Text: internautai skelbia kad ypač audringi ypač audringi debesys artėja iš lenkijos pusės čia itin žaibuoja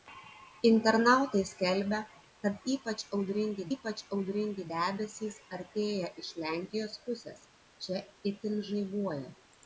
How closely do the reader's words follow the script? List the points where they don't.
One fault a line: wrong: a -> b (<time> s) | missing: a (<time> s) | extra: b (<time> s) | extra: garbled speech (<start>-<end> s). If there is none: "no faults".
no faults